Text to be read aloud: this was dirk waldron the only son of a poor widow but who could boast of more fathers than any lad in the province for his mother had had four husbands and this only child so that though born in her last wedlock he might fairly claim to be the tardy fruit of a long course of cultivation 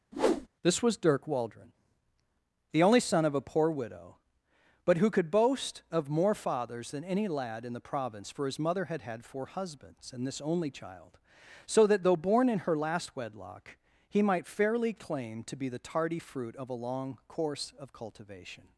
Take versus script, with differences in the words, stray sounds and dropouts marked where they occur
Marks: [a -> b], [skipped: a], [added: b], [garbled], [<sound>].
[whoosh] this was dirk waldron the only son of a poor widow but who could boast of more fathers than any lad in the province for his mother had had four husbands and this only child so that though born in her last wedlock he might fairly claim to be the tardy fruit of a long course of cultivation